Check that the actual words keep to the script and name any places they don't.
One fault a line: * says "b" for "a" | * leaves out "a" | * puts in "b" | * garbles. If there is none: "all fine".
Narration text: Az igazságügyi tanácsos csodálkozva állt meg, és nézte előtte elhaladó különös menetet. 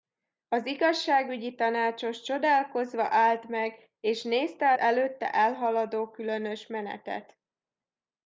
all fine